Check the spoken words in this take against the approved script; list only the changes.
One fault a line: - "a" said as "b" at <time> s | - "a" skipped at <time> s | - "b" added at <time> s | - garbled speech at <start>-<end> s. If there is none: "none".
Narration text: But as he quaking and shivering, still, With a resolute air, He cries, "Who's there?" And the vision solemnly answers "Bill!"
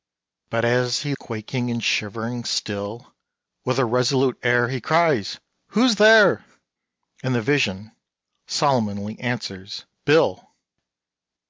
none